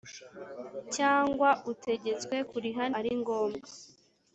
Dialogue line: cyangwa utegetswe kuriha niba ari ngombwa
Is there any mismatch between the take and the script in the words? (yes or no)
yes